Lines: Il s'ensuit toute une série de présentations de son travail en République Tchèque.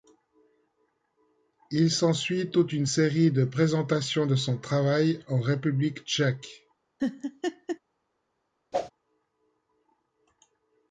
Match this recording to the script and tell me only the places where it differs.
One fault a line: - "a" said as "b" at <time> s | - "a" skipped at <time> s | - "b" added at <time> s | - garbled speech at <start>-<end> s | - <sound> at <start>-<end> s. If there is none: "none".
- laugh at 7.0-7.8 s
- whoosh at 8.7-8.9 s